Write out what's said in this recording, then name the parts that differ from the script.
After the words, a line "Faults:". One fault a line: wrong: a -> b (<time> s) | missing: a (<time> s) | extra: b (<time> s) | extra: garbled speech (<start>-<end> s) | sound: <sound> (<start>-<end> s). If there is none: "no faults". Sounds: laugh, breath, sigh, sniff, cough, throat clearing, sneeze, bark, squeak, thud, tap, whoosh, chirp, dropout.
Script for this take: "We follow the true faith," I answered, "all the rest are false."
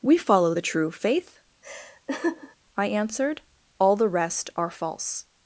"We follow the true faith," I answered, "all the rest are false."
Faults:
sound: laugh (1.6-2.6 s)